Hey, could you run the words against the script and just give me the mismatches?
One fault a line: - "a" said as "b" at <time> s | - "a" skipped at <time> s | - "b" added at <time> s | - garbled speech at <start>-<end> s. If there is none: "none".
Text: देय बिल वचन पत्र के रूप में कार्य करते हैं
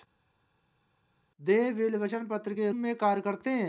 - "रूप" skipped at 2.7 s